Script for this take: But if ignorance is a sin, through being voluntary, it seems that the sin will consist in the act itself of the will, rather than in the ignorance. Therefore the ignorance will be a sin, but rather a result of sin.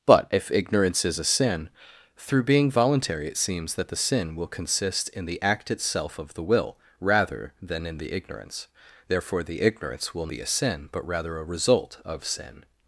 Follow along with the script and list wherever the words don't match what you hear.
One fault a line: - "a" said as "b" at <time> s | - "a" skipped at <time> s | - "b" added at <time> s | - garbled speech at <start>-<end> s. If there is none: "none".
none